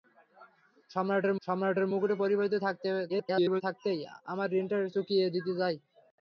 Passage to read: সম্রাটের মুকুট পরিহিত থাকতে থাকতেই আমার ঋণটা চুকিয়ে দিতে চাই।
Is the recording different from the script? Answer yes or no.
yes